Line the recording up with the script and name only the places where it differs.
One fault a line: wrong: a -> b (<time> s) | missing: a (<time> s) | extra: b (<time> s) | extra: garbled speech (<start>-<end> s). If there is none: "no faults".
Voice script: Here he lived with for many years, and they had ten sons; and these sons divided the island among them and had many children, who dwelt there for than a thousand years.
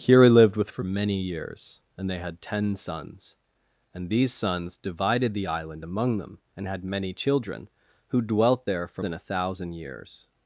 no faults